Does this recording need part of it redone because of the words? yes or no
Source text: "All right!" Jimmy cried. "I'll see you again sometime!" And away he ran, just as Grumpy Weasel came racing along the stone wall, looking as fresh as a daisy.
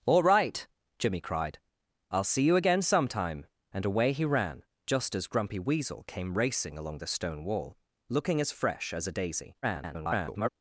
yes